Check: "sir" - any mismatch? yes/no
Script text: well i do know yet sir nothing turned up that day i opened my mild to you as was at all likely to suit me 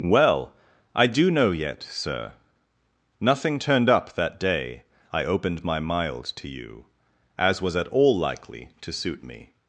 no